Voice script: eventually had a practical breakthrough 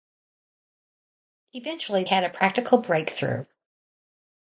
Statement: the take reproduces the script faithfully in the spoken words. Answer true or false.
true